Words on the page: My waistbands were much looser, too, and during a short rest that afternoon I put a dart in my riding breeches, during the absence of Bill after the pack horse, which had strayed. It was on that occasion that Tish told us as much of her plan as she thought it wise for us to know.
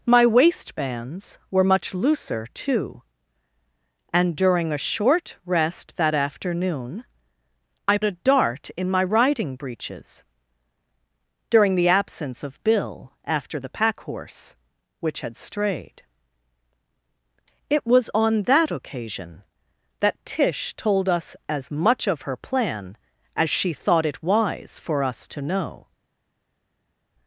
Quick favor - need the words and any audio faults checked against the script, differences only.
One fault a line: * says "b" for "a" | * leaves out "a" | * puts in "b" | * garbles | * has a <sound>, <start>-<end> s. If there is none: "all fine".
* leaves out "put"